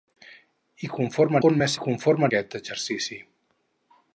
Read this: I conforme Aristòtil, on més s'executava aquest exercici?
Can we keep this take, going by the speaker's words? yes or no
no